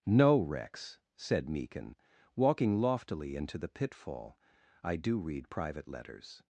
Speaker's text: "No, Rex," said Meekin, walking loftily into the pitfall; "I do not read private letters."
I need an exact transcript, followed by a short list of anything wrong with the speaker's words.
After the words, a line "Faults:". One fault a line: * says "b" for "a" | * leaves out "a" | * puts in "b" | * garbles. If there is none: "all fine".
"No, Rex," said Meekin, walking loftily into the pitfall; "I do read private letters."
Faults:
* leaves out "not"